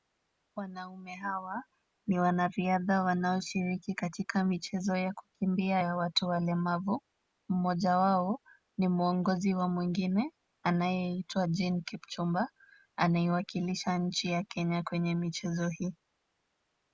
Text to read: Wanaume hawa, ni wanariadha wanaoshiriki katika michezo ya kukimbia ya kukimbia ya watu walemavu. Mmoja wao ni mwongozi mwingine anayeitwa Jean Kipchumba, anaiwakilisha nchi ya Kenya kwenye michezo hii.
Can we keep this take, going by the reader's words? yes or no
no